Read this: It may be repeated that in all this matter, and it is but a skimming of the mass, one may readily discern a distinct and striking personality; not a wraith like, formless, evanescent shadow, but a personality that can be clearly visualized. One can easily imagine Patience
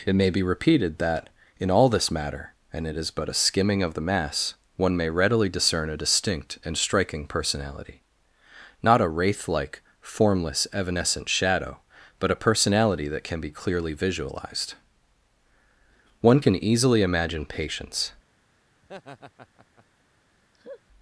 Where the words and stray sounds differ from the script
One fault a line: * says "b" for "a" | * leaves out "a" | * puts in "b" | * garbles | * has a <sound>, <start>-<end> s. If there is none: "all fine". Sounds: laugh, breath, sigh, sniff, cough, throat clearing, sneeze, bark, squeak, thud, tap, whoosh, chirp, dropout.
* has a laugh, 18.8-19.9 s
* has a laugh, 20.5-20.8 s